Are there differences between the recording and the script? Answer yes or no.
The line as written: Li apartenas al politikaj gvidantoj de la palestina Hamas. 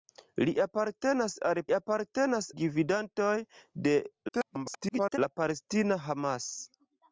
yes